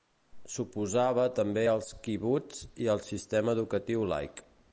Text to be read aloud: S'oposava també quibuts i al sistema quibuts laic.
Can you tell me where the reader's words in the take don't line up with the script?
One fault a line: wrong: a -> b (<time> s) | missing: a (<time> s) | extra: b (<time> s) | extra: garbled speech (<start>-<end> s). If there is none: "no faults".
extra: als (1.7 s)
wrong: quibuts -> educatiu (3.6 s)